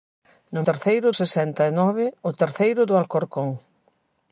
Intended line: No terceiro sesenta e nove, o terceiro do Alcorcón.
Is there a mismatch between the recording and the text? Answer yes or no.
no